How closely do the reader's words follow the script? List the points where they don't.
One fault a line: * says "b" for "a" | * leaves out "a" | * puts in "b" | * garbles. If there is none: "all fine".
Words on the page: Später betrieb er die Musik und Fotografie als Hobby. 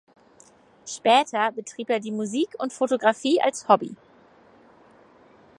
all fine